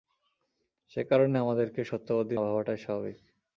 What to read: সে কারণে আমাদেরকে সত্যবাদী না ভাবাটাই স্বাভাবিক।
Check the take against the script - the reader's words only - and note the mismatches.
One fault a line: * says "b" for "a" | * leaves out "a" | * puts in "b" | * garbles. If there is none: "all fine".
* leaves out "না"